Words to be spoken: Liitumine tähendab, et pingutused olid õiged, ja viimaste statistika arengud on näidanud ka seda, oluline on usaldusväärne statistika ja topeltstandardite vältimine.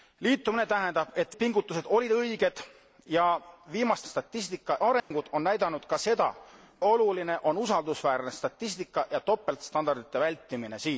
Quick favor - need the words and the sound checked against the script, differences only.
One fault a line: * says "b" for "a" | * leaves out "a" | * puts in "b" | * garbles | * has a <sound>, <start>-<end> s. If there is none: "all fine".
* has a dropout, 5.0-5.1 s